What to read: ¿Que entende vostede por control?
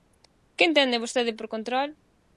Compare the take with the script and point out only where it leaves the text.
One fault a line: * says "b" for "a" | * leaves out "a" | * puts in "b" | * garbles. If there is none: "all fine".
all fine